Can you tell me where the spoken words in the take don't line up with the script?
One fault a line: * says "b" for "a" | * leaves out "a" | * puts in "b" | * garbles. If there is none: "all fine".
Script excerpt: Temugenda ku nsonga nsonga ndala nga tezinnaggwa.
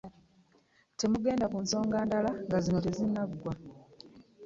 * leaves out "nsonga"
* puts in "zino"